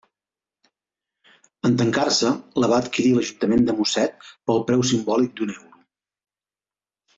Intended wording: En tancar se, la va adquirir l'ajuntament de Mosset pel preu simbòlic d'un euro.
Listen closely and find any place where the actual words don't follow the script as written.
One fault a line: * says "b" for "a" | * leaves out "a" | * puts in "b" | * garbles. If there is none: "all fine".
all fine